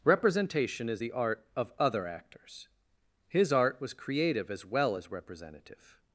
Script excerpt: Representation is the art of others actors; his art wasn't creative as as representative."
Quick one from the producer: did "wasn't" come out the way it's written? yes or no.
no